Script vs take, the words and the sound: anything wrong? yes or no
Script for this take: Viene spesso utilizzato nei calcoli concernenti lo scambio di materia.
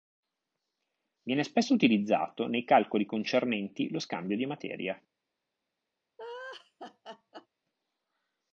yes